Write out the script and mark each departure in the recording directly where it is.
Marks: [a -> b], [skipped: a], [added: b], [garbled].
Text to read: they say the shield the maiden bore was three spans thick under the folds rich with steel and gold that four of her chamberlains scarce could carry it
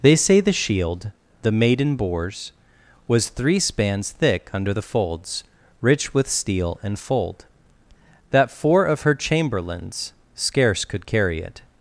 they say the shield the maiden [bore -> bores] was three spans thick under the folds rich with steel and [gold -> fold] that four of her chamberlains scarce could carry it